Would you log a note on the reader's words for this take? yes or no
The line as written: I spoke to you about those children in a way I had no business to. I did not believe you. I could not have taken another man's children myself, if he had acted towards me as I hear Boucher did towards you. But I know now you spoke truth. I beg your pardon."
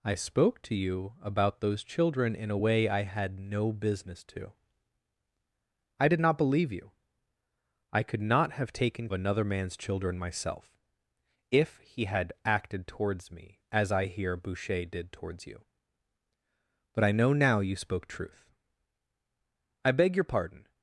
no